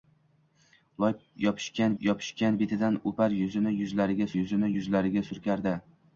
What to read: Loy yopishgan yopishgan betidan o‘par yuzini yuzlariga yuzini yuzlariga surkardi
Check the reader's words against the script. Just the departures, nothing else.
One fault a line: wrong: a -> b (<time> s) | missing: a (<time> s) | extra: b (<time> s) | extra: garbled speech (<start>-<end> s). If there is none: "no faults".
no faults